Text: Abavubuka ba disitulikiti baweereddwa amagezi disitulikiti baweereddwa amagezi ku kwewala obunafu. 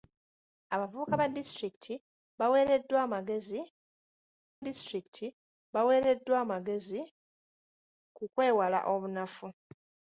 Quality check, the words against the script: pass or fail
pass